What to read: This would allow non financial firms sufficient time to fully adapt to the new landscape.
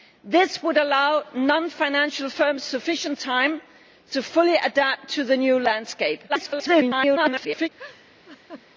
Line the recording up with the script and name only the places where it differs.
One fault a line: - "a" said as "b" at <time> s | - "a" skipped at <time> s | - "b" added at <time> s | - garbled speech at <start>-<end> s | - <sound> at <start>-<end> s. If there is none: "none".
- garbled speech at 6.3-7.7 s
- laugh at 7.8-8.7 s